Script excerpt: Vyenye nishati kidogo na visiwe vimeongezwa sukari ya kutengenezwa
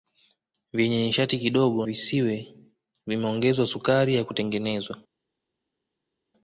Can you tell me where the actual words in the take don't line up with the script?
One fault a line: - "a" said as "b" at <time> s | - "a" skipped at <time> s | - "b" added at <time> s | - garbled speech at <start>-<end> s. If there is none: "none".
- "na" skipped at 1.9 s